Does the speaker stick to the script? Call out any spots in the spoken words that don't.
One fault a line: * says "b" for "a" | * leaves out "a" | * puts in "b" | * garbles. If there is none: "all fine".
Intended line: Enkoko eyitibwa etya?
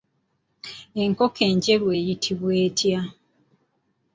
* puts in "enjeru"